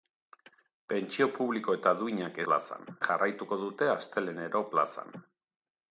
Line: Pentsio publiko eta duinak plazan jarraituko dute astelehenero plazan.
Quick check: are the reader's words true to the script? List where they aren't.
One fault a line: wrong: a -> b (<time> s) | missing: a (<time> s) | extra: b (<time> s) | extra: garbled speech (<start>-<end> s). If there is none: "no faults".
no faults